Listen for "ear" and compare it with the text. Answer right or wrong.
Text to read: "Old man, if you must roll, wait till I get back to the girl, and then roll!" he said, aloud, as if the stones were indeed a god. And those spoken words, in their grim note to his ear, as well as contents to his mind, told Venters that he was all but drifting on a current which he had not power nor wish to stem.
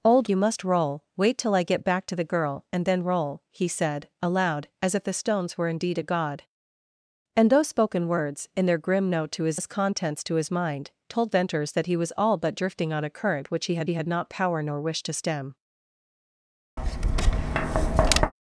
wrong